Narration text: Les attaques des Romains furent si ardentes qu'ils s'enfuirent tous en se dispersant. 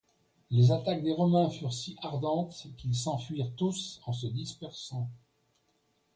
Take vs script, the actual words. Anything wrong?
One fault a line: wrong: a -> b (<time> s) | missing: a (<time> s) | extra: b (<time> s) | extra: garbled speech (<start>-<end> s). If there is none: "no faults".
no faults